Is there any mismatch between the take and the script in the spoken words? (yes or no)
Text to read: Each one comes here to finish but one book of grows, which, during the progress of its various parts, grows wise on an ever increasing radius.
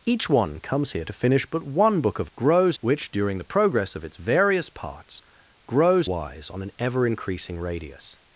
no